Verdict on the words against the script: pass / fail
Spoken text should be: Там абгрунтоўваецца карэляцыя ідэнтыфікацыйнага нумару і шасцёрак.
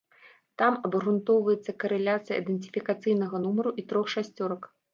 fail